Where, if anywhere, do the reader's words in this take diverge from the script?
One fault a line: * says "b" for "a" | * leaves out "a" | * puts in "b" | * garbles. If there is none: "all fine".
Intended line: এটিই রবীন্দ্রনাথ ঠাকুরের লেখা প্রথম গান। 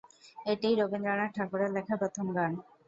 all fine